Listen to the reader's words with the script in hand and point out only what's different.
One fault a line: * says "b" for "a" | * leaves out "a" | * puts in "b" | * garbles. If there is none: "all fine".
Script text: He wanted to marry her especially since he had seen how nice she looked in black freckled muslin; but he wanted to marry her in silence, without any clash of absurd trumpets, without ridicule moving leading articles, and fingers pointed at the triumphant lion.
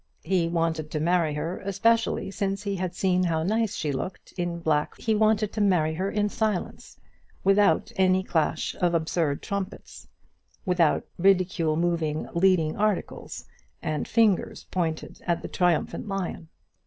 * leaves out "freckled muslin but"